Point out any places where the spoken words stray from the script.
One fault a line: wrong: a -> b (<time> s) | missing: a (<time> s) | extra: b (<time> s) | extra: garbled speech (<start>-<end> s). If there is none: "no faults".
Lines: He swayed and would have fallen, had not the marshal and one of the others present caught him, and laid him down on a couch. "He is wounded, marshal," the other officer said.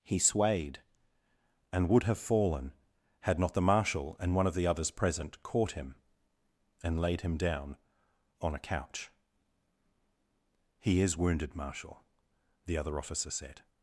no faults